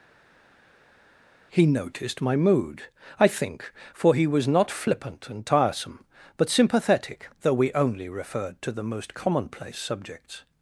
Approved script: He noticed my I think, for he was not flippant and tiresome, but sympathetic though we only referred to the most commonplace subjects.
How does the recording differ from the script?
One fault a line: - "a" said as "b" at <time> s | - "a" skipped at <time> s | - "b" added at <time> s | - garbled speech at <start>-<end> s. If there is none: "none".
- "mood" added at 2.4 s